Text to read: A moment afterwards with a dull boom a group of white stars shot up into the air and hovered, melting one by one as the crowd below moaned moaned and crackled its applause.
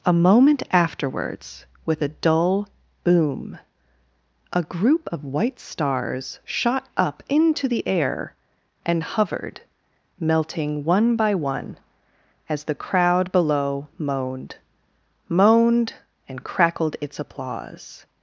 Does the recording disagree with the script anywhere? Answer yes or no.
no